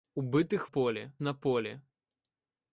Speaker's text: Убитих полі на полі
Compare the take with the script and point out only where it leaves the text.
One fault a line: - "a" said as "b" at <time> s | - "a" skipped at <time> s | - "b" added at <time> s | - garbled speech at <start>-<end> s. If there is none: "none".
none